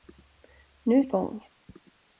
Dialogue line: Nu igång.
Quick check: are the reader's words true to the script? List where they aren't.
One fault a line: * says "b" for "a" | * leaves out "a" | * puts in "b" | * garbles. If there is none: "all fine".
all fine